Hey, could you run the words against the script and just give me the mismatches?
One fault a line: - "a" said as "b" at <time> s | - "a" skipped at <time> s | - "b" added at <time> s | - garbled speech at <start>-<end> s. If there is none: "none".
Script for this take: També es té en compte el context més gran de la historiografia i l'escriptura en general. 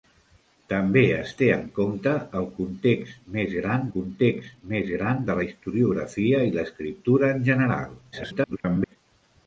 - "context més gran" added at 3.9 s
- garbled speech at 8.1-9.0 s